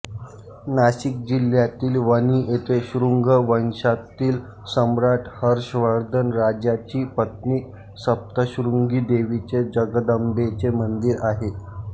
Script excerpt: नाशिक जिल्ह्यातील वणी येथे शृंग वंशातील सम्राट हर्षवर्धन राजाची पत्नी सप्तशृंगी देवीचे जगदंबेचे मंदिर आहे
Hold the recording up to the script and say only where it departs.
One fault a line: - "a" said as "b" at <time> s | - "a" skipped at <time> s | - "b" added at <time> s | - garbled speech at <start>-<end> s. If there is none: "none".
none